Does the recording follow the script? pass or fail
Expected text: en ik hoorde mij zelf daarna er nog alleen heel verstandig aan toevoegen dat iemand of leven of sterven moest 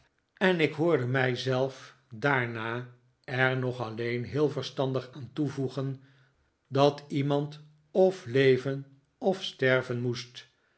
pass